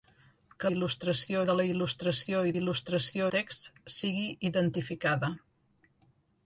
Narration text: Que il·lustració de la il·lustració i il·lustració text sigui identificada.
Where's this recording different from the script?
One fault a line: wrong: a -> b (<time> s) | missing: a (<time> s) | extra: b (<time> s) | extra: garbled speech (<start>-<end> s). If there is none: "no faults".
no faults